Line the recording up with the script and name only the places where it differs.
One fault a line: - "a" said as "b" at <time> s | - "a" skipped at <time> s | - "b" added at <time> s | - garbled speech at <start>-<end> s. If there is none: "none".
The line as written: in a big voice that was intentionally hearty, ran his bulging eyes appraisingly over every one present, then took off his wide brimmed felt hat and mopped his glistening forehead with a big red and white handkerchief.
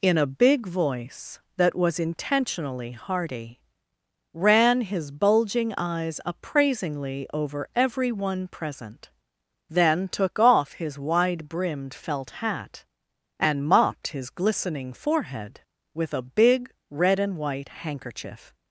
none